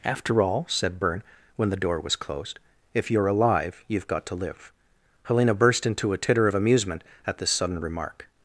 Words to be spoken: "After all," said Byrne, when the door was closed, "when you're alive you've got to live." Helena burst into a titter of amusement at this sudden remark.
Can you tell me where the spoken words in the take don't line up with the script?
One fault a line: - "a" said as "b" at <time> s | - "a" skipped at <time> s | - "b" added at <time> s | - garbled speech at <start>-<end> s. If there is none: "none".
- "when" said as "if" at 2.9 s